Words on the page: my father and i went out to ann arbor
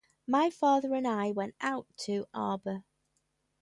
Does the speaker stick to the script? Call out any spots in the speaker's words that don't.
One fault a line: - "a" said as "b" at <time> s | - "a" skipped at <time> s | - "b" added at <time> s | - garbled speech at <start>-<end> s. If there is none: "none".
- "ann" skipped at 2.3 s